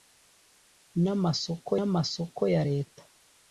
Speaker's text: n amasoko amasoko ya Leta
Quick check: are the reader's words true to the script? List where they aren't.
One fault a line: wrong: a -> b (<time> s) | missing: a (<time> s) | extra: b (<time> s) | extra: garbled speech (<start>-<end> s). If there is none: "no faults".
no faults